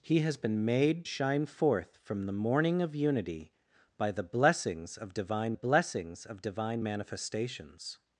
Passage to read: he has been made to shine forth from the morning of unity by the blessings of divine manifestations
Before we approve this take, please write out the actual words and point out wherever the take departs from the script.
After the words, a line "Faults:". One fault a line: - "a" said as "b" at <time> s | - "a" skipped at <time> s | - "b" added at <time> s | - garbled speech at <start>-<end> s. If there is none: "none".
he has been made shine forth from the morning of unity by the blessings of divine blessings of divine manifestations
Faults:
- "to" skipped at 1.1 s
- "blessings of divine" added at 5.5 s